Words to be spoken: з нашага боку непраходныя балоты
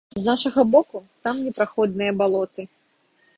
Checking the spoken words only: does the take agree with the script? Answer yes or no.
no